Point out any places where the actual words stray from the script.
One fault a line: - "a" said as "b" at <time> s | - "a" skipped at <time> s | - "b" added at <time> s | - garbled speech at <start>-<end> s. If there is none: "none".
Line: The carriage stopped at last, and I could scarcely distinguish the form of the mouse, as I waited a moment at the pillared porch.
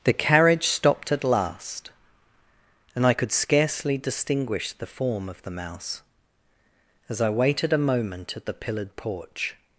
none